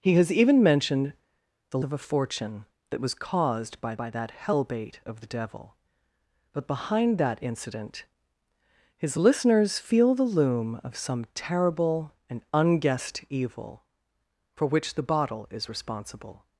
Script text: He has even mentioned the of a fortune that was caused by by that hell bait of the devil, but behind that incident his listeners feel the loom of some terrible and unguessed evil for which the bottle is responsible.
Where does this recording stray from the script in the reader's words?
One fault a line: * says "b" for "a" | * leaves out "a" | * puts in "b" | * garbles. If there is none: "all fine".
all fine